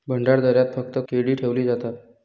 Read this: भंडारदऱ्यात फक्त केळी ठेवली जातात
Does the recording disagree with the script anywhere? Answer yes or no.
no